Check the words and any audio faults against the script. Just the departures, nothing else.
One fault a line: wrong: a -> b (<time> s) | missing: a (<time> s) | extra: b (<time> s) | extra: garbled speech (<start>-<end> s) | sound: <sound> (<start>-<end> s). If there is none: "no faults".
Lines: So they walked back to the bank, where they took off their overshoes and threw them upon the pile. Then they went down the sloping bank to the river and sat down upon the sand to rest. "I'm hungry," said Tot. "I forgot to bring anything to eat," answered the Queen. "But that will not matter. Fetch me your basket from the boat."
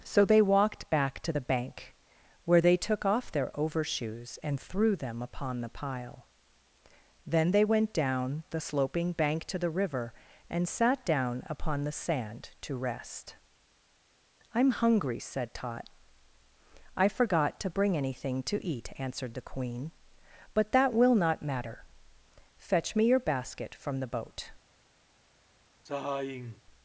sound: sigh (25.9-26.6 s)